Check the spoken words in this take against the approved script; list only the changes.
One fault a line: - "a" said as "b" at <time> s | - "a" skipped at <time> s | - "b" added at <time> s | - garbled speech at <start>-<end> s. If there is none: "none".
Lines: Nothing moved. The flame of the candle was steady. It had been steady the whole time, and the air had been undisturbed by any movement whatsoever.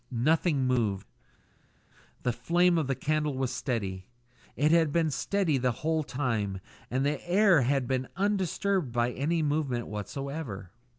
none